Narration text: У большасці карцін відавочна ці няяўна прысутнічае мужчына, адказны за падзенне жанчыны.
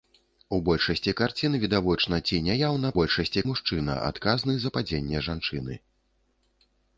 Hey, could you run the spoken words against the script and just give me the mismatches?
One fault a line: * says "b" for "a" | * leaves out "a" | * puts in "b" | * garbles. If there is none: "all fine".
* says "большасці" for "прысутнічае"